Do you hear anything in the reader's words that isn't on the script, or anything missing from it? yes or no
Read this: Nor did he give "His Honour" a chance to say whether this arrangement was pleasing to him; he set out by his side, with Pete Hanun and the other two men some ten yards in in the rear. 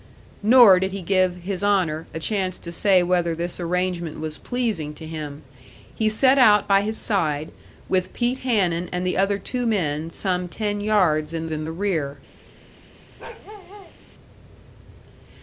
no